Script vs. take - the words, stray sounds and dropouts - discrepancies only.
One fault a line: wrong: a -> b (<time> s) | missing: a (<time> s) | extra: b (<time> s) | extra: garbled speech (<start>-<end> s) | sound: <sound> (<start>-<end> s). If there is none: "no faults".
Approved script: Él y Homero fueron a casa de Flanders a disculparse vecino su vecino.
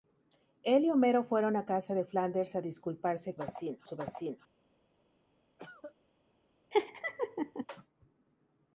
sound: cough (5.6-6.0 s)
sound: laugh (6.7-7.7 s)